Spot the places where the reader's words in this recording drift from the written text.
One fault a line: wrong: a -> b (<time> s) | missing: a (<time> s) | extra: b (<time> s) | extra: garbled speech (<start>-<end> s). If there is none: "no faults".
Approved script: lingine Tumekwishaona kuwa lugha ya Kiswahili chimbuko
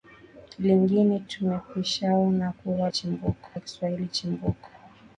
wrong: lugha -> chimbuko (2.9 s)